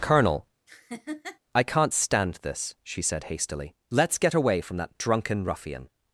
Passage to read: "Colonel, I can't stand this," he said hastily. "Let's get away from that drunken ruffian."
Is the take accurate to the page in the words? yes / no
no